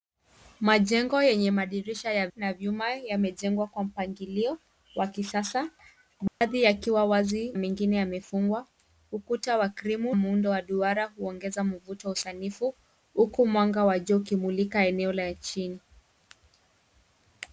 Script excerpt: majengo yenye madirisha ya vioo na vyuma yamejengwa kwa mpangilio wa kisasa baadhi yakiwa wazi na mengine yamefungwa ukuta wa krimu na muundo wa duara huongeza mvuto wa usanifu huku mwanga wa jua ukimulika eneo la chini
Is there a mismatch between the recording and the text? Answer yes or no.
yes